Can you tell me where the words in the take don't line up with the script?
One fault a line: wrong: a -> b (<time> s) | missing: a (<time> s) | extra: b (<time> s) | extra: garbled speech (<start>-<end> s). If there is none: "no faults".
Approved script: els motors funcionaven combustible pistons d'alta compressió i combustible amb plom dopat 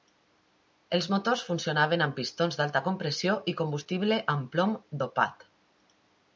wrong: combustible -> amb (2.1 s)